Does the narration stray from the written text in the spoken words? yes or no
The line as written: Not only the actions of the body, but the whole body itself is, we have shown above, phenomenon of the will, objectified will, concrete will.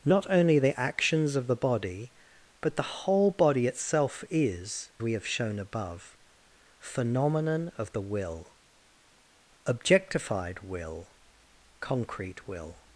no